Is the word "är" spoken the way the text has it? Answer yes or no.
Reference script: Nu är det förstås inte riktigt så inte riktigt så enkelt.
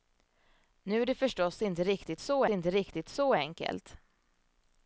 yes